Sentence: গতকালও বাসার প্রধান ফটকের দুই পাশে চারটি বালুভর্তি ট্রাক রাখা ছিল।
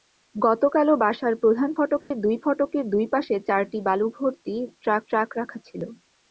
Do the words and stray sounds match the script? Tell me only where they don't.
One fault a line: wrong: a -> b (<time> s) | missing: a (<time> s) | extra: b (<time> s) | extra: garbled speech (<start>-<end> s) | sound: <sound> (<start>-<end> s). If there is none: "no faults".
sound: dropout (2.0-2.1 s)
extra: ফটকের দুই (2.4 s)
extra: ট্রাক (5.1 s)